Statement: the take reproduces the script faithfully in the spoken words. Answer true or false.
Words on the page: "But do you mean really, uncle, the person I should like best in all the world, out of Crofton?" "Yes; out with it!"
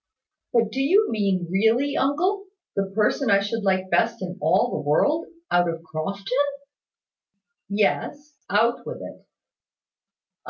true